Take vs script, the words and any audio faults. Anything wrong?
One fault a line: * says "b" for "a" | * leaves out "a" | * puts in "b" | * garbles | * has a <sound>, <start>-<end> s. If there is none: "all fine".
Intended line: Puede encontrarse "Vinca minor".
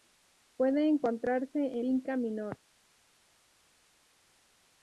all fine